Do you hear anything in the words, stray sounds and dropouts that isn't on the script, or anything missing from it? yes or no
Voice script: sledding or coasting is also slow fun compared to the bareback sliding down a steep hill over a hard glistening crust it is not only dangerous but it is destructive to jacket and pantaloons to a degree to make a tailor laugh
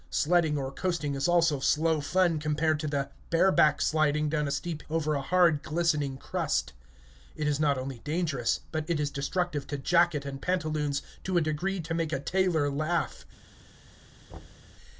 yes